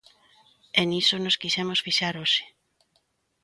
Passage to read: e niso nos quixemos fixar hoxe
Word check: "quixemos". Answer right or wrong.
right